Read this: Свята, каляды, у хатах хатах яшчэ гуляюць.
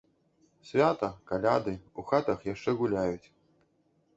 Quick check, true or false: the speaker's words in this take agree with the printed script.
false